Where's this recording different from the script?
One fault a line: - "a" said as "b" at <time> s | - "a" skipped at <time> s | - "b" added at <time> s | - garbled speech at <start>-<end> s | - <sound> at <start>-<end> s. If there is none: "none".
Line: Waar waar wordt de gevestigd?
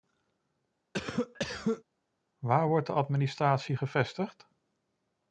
- cough at 0.9-1.8 s
- "waar" skipped at 2.7 s
- "administratie" added at 2.9 s